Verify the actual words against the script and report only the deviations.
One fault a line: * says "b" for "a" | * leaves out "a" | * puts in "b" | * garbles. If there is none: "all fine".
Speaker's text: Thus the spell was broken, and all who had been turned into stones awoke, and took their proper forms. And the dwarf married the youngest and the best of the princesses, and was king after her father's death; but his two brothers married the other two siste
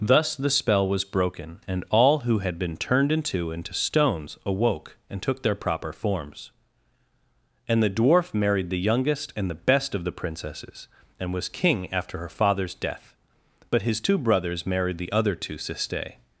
* puts in "into"